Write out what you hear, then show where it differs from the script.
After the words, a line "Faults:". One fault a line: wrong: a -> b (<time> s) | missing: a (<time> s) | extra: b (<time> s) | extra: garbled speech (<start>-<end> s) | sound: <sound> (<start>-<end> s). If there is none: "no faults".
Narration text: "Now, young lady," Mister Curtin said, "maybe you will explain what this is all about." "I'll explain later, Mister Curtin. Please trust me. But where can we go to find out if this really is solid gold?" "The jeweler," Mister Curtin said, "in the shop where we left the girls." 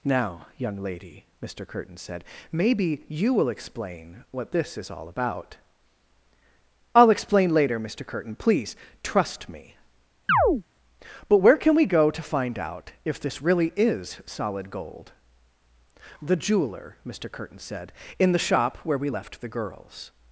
"Now, young lady," Mister Curtin said, "maybe you will explain what this is all about." "I'll explain later, Mister Curtin. Please trust me. But where can we go to find out if this really is solid gold?" "The jeweler," Mister Curtin said, "in the shop where we left the girls."
Faults:
sound: chirp (10.3-10.6 s)